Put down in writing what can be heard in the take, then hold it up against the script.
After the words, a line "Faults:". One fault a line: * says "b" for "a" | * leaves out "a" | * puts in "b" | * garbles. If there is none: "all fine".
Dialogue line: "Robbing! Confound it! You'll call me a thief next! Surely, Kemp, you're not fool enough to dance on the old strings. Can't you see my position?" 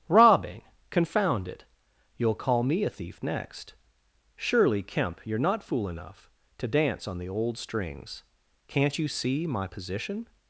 "Robbing! Confound it! You'll call me a thief next! Surely, Kemp, you're not fool enough to dance on the old strings. Can't you see my position?"
Faults:
all fine